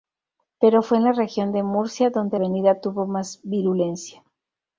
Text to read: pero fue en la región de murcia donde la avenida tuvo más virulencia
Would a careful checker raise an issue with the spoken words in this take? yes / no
yes